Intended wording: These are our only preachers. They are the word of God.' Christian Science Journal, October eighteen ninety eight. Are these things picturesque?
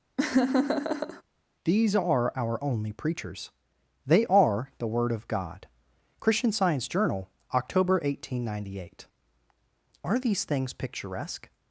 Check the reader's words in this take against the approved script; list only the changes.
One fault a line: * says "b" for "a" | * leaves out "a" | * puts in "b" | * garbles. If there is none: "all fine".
all fine